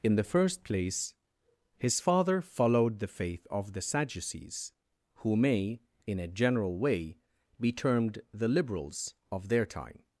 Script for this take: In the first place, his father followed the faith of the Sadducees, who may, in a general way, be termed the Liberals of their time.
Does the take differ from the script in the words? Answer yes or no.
no